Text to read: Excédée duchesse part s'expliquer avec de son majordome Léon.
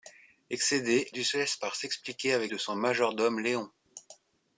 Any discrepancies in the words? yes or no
no